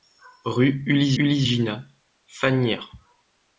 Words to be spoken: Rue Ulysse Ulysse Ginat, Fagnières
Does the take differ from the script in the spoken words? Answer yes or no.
no